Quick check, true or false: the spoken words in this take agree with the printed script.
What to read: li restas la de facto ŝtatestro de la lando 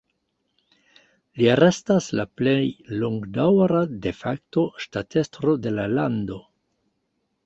false